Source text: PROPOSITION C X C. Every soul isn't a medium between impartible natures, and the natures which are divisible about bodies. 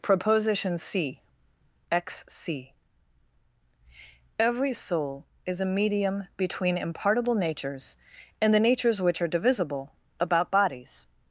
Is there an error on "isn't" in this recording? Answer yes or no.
yes